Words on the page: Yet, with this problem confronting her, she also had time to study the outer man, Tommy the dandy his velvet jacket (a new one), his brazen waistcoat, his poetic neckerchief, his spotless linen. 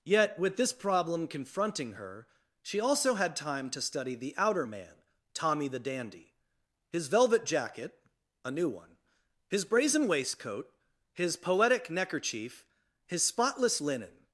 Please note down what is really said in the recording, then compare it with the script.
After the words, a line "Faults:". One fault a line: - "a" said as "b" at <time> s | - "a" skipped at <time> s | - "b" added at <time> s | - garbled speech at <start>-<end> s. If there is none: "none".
Yet, with this problem confronting her, she also had time to study the outer man, Tommy the dandy his velvet jacket (a new one), his brazen waistcoat, his poetic neckerchief, his spotless linen.
Faults:
none